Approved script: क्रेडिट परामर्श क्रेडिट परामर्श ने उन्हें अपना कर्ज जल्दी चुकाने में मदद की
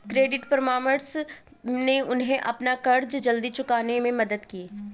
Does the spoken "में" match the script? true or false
true